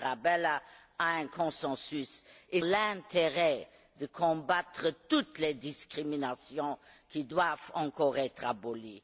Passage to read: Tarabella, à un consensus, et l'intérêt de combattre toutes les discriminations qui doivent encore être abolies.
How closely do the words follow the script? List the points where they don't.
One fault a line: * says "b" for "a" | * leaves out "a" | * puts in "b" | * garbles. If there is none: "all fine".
all fine